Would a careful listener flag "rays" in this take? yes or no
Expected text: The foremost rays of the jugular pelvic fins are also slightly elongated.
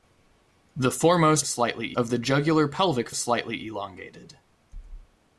yes